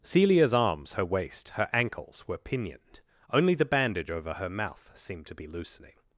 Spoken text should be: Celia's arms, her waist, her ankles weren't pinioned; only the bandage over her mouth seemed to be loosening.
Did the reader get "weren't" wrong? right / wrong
wrong